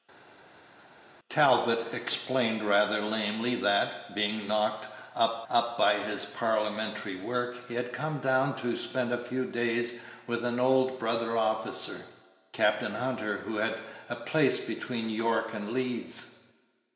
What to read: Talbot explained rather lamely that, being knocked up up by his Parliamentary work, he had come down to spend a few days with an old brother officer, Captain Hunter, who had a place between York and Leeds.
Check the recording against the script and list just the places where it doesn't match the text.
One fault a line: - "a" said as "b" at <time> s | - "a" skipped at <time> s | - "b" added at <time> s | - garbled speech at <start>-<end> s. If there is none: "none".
none